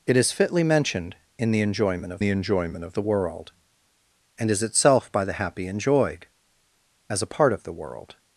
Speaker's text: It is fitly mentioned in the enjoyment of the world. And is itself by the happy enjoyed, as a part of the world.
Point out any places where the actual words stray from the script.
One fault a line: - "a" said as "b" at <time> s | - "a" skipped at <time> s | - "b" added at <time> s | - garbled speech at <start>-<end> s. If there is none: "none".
- "enjoyment of the" added at 2.3 s